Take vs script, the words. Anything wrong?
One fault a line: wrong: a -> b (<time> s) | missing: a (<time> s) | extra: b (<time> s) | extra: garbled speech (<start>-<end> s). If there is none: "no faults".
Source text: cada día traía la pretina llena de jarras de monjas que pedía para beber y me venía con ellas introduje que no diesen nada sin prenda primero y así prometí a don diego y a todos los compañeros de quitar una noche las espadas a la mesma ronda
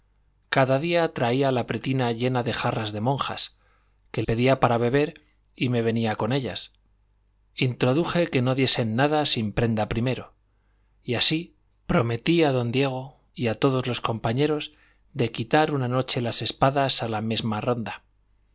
no faults